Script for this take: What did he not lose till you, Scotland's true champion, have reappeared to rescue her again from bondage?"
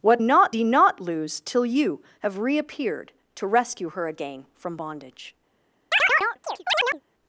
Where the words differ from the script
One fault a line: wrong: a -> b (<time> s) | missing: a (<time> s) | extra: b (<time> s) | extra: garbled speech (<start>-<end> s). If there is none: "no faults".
wrong: did -> not (0.2 s)
missing: Scotland's true champion (2.0 s)